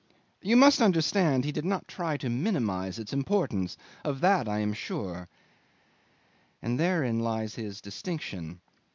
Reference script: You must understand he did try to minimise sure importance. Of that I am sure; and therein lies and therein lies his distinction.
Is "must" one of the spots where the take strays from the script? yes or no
no